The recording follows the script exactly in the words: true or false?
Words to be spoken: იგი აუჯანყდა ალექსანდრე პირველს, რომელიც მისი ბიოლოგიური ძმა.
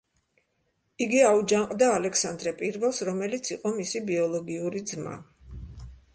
false